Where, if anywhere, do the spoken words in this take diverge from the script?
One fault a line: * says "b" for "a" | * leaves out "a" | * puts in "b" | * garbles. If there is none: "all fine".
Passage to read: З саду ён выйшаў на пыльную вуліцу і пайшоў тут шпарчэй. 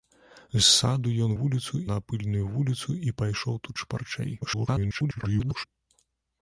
* says "вуліцу" for "выйшаў"
* garbles